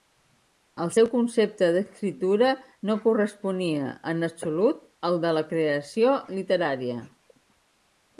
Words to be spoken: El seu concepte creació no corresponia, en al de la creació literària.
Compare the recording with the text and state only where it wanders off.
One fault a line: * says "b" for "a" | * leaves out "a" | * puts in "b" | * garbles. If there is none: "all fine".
* says "d'escriptura" for "creació"
* puts in "absolut"